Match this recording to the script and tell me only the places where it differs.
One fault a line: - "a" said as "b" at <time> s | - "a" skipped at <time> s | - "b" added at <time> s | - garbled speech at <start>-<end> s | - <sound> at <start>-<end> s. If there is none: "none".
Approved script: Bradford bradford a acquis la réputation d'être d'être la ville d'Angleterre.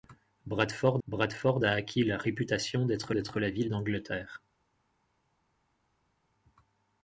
none